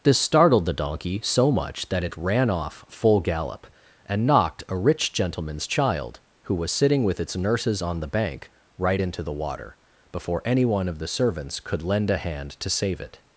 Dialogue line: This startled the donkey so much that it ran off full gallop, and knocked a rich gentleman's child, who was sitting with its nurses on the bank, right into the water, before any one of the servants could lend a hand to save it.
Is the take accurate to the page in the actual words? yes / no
yes